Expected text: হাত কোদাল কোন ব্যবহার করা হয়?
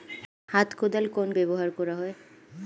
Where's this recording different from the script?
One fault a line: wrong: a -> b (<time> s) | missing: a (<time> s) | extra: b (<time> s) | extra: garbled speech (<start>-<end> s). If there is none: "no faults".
no faults